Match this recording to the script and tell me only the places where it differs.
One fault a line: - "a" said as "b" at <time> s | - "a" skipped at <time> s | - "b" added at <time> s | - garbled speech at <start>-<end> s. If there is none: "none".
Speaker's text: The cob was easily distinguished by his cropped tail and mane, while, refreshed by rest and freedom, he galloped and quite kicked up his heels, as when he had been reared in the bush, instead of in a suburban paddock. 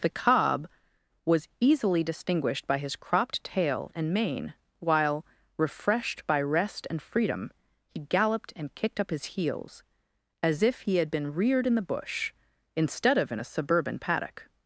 - "quite" skipped at 8.7 s
- "when" said as "if" at 10.6 s